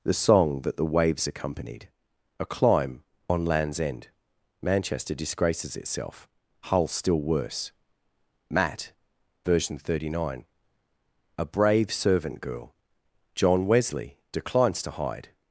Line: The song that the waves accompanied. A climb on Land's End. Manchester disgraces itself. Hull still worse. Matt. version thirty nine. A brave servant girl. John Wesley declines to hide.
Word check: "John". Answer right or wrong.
right